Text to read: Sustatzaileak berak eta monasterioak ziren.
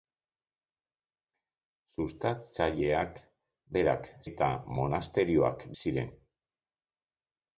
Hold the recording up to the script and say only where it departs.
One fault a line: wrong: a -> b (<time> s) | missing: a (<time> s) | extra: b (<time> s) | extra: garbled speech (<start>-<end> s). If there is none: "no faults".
no faults